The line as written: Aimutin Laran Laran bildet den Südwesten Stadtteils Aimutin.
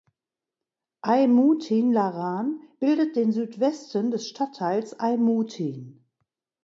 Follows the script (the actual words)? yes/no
no